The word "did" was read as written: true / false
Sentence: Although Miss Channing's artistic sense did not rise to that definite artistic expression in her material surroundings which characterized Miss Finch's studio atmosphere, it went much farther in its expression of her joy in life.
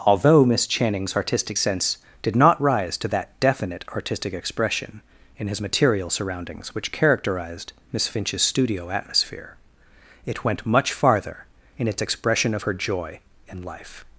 true